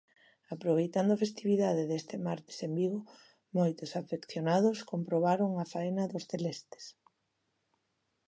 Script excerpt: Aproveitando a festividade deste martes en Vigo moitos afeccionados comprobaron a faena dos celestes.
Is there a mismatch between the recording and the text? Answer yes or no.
no